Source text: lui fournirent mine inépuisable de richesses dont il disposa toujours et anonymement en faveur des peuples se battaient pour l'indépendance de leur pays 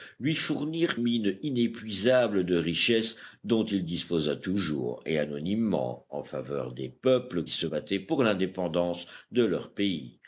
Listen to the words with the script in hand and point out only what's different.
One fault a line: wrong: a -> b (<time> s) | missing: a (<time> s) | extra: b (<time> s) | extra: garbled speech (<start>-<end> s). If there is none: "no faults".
no faults